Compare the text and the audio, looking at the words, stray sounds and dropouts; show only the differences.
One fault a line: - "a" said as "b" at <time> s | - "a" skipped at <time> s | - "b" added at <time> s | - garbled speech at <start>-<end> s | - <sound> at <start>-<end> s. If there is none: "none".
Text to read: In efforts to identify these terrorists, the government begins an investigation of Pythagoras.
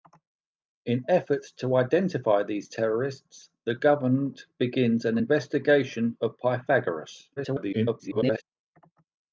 - garbled speech at 7.4-8.4 s